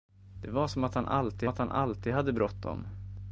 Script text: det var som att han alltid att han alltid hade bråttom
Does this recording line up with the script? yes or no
yes